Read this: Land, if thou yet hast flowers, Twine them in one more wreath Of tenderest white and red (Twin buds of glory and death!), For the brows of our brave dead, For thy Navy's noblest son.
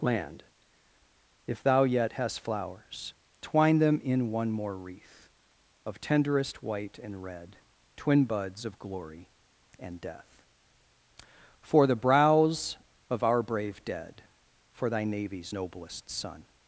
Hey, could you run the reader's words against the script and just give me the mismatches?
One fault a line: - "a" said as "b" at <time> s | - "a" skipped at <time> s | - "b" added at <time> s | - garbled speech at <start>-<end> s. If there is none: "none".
none